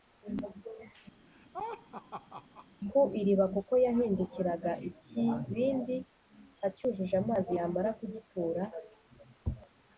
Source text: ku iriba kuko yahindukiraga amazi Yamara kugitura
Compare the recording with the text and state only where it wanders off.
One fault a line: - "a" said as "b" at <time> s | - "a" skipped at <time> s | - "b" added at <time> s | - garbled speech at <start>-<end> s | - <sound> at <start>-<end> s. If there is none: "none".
- laugh at 1.3-2.7 s
- "ikibindi acyujuje" added at 4.9 s